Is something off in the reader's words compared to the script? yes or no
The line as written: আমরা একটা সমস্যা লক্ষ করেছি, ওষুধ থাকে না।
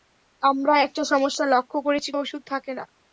no